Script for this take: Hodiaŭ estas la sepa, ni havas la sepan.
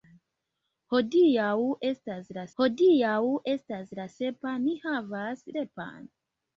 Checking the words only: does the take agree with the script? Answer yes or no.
no